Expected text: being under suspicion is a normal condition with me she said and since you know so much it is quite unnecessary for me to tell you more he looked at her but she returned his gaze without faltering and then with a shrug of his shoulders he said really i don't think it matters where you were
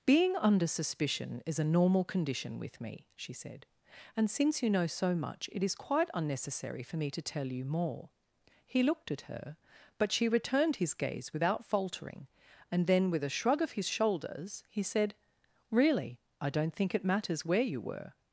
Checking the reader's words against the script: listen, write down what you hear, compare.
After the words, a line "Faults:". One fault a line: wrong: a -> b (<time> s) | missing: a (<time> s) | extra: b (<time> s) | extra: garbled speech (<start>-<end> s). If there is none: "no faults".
being under suspicion is a normal condition with me she said and since you know so much it is quite unnecessary for me to tell you more he looked at her but she returned his gaze without faltering and then with a shrug of his shoulders he said really i don't think it matters where you were
Faults:
no faults